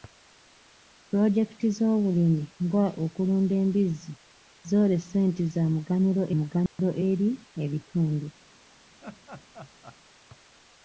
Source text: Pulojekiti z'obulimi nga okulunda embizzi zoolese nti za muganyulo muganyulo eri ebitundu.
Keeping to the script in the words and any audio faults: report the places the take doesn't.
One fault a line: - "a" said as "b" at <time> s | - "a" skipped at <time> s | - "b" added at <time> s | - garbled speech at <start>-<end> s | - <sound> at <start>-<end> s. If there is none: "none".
- dropout at 6.7-6.8 s
- laugh at 9.0-10.0 s